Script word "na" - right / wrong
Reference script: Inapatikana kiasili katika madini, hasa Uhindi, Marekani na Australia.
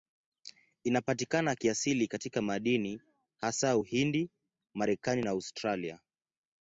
right